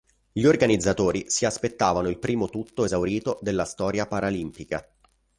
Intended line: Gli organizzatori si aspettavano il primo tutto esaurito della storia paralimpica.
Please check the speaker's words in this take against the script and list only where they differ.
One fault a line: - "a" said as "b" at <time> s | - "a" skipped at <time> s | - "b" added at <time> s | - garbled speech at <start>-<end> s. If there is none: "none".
none